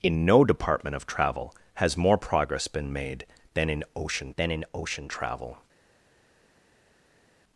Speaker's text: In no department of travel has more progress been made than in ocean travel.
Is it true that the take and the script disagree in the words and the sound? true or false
true